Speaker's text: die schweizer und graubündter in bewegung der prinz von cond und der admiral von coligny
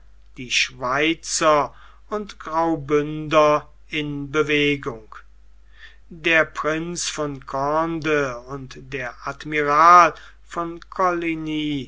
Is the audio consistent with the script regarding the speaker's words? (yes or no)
yes